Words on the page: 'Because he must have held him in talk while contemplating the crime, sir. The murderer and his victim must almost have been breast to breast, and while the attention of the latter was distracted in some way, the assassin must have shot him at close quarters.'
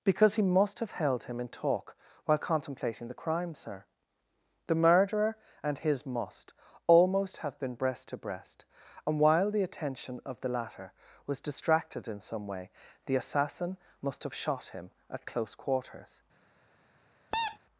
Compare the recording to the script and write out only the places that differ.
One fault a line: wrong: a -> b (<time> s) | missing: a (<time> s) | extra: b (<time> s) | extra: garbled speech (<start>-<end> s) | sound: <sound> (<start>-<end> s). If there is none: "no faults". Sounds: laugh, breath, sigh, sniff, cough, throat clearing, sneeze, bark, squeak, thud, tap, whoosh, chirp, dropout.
missing: victim (6.0 s)
sound: squeak (17.3-17.6 s)